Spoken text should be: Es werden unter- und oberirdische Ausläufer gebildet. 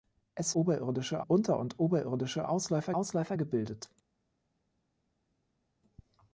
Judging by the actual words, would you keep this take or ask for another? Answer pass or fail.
fail